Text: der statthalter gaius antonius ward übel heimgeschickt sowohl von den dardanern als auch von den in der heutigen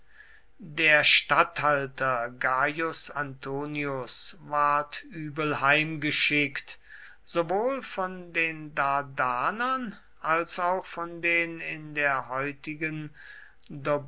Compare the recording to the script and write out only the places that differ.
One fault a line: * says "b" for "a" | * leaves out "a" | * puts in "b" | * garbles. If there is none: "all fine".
all fine